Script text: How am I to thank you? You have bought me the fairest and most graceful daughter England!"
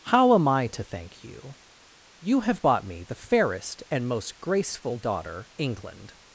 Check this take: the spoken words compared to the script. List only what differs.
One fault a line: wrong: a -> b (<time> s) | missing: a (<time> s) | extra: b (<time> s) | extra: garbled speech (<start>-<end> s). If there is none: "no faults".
no faults